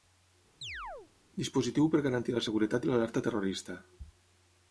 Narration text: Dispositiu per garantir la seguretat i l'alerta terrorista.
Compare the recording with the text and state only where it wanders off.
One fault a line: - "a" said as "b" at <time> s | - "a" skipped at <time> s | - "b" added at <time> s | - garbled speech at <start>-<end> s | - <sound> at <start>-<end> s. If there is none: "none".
- chirp at 0.6-1.1 s